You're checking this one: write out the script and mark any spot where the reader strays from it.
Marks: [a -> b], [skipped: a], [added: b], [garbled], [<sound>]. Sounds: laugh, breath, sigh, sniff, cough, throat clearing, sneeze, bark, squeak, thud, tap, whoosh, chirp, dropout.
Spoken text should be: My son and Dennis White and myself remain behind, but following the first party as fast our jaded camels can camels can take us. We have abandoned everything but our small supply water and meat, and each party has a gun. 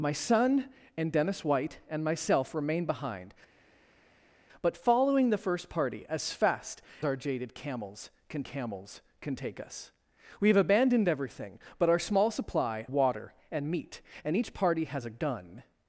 My son and Dennis White and myself remain behind, but following the first party as fast our jaded camels can camels can take us. We have abandoned everything but our small supply water and meat, and each party has a gun.